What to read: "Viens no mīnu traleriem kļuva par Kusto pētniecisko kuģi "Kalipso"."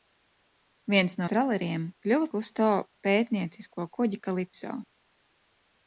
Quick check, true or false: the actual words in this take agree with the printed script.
false